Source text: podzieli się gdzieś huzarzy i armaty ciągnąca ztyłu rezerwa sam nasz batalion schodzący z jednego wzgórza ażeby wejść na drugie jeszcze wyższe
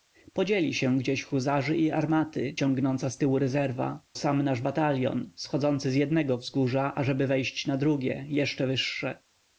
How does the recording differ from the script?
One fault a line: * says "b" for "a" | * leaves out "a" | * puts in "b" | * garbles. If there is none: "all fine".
all fine